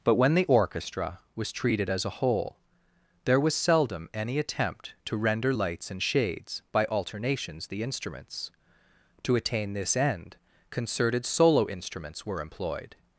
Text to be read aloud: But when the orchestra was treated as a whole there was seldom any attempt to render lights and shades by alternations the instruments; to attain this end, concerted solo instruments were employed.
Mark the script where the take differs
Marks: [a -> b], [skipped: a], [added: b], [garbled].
But when the orchestra was treated as a whole there was seldom any attempt to render lights and shades by alternations the instruments; to attain this end, concerted solo instruments were employed.